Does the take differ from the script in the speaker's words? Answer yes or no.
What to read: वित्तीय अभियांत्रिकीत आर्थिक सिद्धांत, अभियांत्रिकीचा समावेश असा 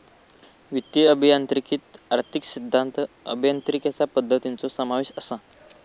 yes